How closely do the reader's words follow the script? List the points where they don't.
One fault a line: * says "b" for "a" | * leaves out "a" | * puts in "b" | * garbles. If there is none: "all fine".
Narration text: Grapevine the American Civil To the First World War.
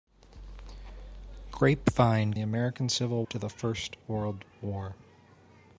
all fine